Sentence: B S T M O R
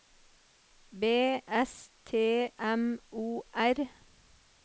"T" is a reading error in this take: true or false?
false